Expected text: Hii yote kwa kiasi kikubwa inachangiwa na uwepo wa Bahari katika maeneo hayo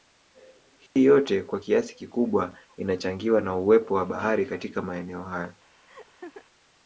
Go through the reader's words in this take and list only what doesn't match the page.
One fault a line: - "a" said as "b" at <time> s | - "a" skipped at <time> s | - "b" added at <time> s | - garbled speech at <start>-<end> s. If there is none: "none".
none